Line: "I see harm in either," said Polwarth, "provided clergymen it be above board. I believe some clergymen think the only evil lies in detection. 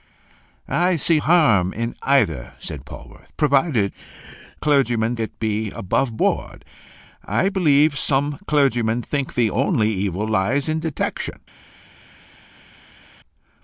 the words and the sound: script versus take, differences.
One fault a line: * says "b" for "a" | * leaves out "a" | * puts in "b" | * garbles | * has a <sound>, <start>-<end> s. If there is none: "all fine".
all fine